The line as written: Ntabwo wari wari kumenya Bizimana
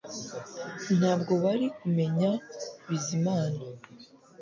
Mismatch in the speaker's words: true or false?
true